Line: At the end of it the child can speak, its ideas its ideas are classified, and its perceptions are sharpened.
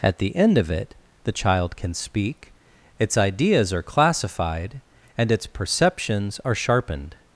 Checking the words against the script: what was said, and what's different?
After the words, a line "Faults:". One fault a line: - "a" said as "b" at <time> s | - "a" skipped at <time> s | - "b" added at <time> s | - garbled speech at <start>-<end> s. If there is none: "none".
At the end of it the child can speak, its ideas are classified, and its perceptions are sharpened.
Faults:
- "its ideas" skipped at 3.7 s